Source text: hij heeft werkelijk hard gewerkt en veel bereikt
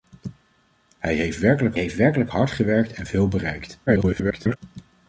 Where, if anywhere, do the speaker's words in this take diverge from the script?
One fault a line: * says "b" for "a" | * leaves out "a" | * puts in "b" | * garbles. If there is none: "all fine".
* puts in "heeft werkelijk"
* garbles